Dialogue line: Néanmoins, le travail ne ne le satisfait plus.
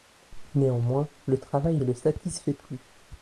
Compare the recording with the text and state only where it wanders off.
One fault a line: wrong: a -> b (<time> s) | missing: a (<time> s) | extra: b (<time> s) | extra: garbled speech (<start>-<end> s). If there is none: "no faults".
missing: ne (1.8 s)